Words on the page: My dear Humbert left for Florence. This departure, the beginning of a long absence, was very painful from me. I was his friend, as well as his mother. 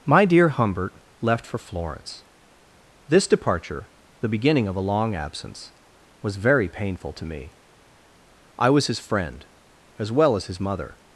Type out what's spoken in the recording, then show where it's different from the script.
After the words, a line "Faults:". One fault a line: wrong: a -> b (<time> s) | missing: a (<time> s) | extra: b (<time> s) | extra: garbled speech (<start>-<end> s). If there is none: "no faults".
My dear Humbert left for Florence. This departure, the beginning of a long absence, was very painful to me. I was his friend, as well as his mother.
Faults:
wrong: from -> to (7.1 s)